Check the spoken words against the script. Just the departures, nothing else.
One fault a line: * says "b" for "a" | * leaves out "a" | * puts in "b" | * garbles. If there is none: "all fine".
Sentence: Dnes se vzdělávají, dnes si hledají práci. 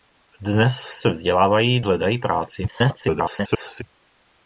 * leaves out "dnes si"
* garbles